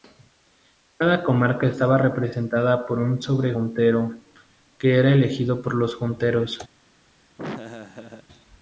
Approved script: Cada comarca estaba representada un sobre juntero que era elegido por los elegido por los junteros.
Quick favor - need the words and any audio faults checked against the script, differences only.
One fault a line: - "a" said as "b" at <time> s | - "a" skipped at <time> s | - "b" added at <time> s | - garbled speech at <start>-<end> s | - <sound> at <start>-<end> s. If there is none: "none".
- "por" added at 2.9 s
- "elegido por los" skipped at 5.9 s
- laugh at 7.4-8.3 s